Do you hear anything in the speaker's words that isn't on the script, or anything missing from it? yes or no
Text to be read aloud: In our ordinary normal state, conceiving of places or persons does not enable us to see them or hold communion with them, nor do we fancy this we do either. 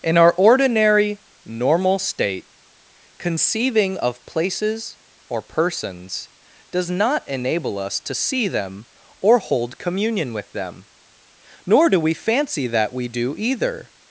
yes